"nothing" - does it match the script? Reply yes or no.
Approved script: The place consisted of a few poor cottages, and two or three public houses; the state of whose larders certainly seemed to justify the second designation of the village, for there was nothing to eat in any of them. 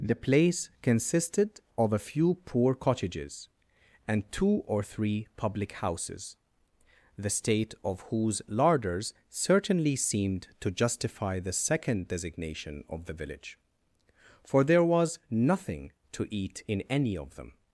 yes